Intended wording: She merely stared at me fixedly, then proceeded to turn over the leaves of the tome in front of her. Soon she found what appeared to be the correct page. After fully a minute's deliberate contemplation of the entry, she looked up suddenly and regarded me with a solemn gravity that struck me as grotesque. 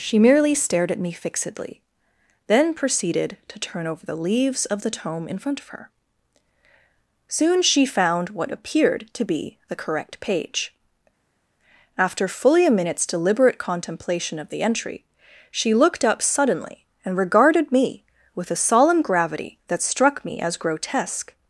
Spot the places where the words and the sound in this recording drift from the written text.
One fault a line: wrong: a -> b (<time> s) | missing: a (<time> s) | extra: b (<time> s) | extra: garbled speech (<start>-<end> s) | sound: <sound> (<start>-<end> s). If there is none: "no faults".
no faults